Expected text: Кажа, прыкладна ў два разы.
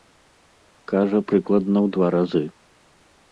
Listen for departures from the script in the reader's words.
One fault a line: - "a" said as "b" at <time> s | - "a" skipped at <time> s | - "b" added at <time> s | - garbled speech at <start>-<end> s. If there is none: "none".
none